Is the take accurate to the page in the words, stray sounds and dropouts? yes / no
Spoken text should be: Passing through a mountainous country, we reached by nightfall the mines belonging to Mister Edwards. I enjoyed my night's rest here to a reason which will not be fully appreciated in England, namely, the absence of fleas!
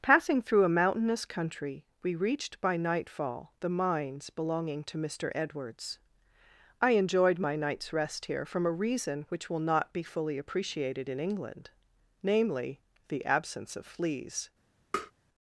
no